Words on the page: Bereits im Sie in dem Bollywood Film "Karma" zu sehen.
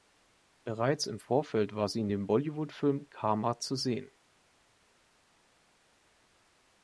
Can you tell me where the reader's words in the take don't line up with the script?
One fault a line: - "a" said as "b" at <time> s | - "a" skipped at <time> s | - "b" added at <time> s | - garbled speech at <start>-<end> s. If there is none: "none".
- "Vorfeld war" added at 1.2 s